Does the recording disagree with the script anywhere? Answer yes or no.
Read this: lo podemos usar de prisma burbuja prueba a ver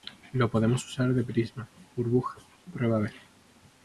no